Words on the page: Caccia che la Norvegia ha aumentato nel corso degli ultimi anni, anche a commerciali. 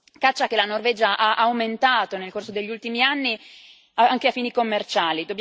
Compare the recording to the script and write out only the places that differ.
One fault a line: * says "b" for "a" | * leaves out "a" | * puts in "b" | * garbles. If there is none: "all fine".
* puts in "fini"